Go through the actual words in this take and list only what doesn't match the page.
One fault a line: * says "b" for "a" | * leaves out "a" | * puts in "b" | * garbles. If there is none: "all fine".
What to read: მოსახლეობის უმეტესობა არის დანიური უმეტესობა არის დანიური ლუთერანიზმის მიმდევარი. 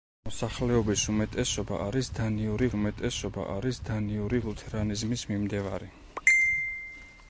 all fine